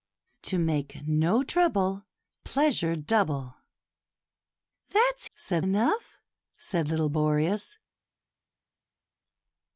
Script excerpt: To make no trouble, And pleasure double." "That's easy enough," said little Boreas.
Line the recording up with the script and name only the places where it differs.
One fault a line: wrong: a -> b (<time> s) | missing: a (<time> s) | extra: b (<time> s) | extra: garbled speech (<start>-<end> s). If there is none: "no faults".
missing: And (2.1 s)
wrong: easy -> said (5.3 s)